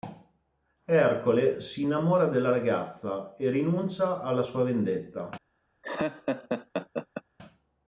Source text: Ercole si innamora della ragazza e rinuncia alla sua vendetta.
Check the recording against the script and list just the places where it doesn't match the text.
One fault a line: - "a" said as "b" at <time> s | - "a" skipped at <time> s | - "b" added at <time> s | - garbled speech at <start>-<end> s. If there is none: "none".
none